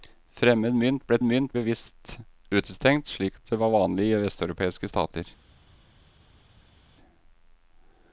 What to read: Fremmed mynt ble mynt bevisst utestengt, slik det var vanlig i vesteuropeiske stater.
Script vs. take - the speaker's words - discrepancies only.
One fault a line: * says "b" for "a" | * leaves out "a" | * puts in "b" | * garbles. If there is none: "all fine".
all fine